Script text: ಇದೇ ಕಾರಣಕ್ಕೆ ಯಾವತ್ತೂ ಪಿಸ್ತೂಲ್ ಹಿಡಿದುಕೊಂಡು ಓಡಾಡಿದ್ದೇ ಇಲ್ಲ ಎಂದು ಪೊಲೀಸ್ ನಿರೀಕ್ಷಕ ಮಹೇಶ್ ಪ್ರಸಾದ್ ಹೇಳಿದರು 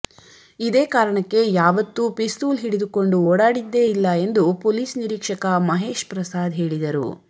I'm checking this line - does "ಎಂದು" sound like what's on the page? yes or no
yes